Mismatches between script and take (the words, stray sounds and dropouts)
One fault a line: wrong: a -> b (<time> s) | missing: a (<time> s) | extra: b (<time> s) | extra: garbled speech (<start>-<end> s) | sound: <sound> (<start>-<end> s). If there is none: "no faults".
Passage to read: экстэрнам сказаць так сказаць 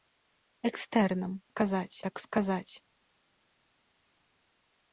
no faults